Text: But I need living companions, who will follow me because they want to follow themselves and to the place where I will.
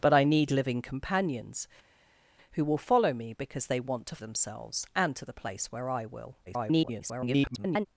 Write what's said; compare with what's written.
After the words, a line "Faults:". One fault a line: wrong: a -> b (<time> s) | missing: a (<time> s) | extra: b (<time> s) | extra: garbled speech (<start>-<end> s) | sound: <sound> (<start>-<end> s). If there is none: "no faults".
But I need living companions, who will follow me because they want to themselves and to the place where I will. [garbled]
Faults:
missing: follow (4.2 s)
extra: garbled speech (6.5-7.9 s)